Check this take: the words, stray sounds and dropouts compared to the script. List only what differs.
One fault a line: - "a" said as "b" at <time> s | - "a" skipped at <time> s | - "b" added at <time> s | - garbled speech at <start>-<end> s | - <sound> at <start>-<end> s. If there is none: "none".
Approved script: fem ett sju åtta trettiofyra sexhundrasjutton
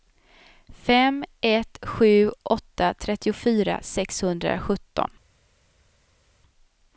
none